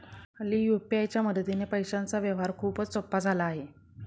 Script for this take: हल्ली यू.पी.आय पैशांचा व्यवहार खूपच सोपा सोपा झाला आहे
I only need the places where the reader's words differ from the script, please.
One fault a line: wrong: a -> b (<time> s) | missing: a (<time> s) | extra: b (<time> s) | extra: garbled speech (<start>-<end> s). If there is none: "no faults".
extra: च्या मदतीने (1.1 s)
missing: सोपा (3.2 s)